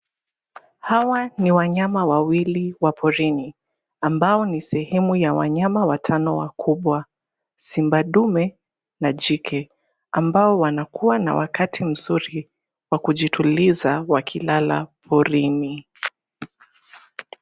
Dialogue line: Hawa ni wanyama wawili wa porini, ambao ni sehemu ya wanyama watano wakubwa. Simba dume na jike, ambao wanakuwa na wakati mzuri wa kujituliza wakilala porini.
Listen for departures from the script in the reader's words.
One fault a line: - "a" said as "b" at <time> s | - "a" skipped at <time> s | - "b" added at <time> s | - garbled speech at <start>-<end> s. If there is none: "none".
none